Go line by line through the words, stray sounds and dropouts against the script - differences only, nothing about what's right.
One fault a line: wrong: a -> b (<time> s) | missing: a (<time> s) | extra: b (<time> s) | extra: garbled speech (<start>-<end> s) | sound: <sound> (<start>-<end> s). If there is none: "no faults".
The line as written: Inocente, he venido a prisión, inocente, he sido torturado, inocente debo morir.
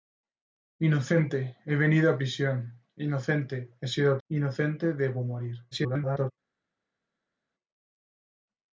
missing: torturado (4.2 s)
extra: garbled speech (5.7-6.3 s)